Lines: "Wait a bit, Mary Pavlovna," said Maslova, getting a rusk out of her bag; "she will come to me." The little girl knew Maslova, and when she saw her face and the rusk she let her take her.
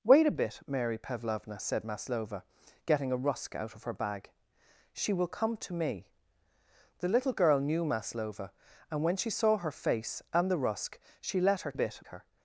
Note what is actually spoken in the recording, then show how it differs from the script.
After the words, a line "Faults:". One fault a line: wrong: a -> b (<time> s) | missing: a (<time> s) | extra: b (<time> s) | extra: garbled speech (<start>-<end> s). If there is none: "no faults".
"Wait a bit, Mary Pavlovna," said Maslova, getting a rusk out of her bag; "she will come to me." The little girl knew Maslova, and when she saw her face and the rusk she let her bit her.
Faults:
wrong: take -> bit (11.7 s)